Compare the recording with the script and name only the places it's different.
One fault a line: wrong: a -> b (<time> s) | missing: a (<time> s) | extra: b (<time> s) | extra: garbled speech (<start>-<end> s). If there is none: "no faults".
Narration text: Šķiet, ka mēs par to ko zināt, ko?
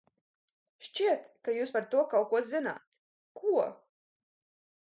wrong: mēs -> jūs (1.6 s)
extra: kaut (2.1 s)